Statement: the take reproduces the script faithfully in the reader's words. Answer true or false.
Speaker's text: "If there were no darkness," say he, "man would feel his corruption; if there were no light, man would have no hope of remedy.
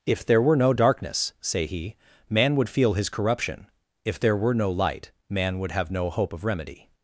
true